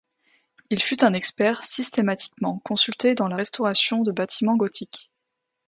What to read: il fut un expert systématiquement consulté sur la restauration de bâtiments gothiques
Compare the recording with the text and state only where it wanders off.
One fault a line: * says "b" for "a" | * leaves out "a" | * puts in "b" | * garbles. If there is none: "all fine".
* says "dans" for "sur"